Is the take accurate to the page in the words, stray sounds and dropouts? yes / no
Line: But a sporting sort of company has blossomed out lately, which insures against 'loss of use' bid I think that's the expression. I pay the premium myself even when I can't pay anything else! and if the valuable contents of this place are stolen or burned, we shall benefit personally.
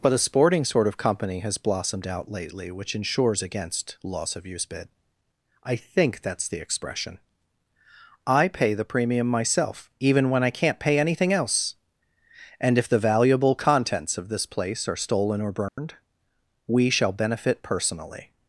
no